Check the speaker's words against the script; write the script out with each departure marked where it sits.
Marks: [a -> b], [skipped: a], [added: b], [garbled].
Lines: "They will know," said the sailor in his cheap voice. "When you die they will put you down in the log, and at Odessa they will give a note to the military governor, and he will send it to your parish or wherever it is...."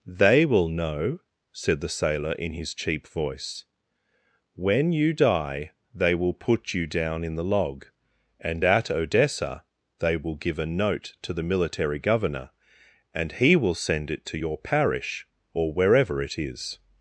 "They will know," said the sailor in his cheap voice. "When you die they will put you down in the log, and at Odessa they will give a note to the military governor, and he will send it to your parish or wherever it is...."